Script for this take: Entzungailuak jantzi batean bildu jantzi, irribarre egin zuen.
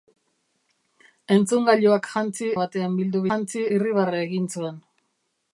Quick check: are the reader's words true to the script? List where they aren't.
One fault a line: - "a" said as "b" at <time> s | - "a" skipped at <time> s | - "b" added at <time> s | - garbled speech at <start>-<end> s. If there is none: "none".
none